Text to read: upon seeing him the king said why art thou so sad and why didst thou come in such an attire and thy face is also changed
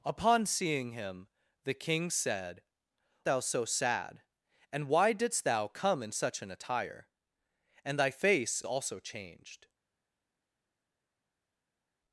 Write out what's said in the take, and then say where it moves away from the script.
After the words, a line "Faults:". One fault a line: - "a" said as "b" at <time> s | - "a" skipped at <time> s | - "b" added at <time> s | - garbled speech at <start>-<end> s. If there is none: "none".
upon seeing him the king said thou so sad and why didst thou come in such an attire and thy face also changed
Faults:
- "why art" skipped at 2.6 s
- "is" skipped at 8.6 s